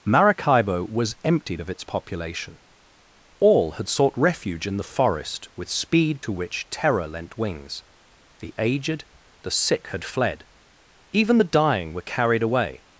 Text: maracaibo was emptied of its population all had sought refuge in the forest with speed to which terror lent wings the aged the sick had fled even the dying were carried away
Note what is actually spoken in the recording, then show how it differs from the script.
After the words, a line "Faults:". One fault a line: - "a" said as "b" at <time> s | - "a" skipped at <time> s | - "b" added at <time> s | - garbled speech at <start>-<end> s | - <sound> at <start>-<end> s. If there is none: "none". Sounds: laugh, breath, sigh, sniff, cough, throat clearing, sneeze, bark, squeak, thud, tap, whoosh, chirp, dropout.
maracaibo was emptied of its population all had sought refuge in the forest with speed to which terror lent wings the aged the sick had fled even the dying were carried away
Faults:
none